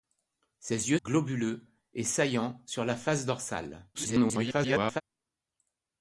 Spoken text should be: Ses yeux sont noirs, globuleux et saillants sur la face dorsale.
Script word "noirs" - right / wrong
wrong